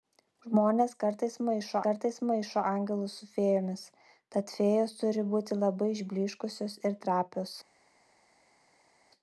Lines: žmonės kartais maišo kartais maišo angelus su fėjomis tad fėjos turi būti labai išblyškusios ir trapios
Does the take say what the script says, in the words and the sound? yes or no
yes